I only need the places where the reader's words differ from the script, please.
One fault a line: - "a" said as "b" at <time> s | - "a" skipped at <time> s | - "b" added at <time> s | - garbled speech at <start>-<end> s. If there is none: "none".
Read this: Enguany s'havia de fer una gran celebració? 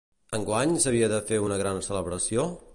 none